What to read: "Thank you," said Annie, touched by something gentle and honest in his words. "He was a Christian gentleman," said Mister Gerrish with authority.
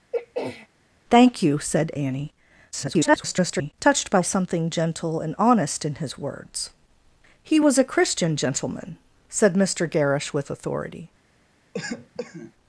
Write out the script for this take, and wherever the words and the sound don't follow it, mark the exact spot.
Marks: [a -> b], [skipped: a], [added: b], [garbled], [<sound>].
[throat clearing] "Thank you," said Annie, [garbled] touched by something gentle and honest in his words. "He was a Christian gentleman," said Mister Gerrish with authority. [cough]